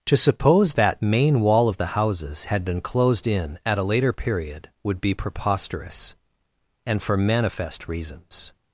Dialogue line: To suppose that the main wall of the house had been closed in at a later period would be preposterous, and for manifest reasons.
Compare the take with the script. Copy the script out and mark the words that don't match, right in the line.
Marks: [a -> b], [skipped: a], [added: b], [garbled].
To suppose that [skipped: the] main wall of the [house -> houses] had been closed in at a later period would be preposterous, and for manifest reasons.